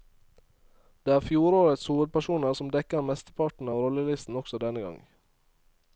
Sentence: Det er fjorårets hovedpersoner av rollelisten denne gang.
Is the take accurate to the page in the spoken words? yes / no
no